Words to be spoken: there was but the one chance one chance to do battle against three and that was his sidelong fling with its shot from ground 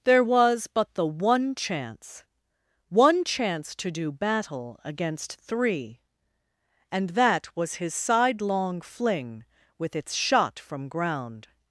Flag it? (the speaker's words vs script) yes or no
no